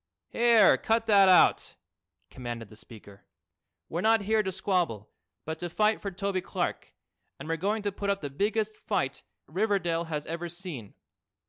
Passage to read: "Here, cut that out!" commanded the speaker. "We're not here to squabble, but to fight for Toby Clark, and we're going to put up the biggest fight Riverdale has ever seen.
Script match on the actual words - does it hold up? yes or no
yes